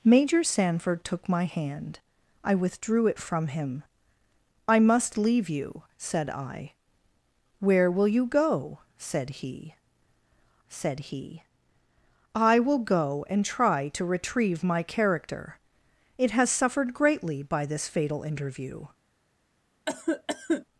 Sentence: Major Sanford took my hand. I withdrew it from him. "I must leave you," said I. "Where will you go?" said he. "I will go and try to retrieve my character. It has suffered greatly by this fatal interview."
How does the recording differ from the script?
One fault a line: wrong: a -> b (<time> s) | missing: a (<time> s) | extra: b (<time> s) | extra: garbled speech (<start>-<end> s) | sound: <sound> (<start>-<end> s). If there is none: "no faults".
extra: said he (10.7 s)
sound: cough (19.9-20.7 s)